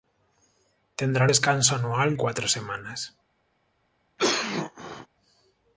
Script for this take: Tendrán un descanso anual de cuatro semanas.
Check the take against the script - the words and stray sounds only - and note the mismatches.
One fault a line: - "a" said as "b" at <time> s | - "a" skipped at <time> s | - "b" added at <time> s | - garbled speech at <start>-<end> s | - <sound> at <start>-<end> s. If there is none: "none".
- "un" skipped at 1.3 s
- "de" skipped at 2.1 s
- cough at 4.2-5.1 s